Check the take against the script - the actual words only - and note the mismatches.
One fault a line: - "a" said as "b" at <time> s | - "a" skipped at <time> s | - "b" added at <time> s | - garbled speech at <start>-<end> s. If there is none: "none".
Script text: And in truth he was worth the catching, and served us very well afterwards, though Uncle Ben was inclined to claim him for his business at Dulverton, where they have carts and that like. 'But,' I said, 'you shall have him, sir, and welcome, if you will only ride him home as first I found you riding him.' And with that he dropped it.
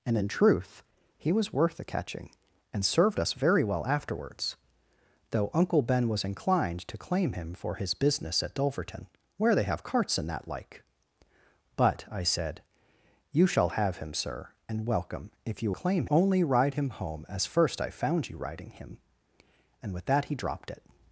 - "will" said as "claim" at 15.7 s